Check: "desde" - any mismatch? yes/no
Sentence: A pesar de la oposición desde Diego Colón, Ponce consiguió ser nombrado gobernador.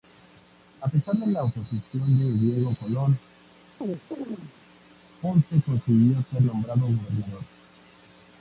yes